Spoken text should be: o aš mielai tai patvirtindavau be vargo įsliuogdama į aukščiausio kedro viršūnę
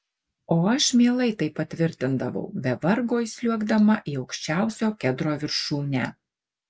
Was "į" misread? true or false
false